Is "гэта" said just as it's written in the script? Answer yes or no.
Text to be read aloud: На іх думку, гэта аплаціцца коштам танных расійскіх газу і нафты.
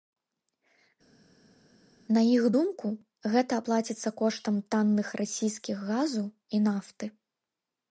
yes